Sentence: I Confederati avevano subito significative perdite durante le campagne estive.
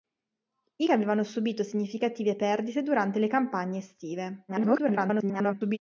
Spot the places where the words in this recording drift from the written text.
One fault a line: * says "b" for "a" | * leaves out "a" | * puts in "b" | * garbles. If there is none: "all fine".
* leaves out "Confederati"
* garbles